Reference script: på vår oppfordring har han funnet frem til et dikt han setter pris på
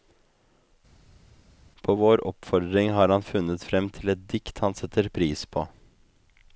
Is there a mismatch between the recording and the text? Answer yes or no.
no